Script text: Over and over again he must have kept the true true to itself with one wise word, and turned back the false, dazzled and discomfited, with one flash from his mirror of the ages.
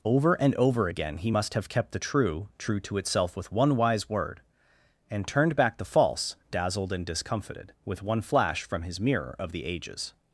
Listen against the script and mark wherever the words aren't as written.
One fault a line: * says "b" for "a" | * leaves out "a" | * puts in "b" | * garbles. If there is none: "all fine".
all fine